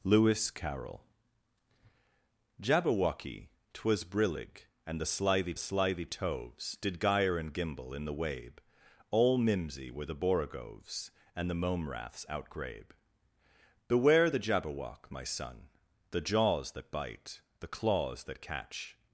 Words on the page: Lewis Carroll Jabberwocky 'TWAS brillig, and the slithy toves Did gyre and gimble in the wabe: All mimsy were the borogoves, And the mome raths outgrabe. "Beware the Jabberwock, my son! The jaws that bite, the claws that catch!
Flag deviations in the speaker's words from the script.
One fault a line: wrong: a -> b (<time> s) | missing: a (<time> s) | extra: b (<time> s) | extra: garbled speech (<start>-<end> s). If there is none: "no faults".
extra: slithy (5.6 s)